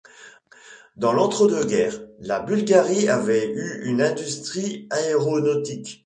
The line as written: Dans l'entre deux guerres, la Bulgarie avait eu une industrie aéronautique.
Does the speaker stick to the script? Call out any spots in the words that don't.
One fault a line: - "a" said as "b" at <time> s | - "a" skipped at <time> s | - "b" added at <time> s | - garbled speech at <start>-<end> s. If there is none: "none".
none